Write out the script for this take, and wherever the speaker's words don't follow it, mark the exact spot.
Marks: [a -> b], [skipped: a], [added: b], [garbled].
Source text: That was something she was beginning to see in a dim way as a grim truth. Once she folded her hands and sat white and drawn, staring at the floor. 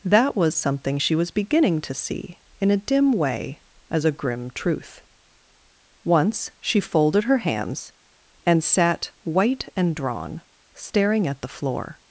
That was something she was beginning to see in a dim way as a grim truth. Once she folded her hands and sat white and drawn, staring at the floor.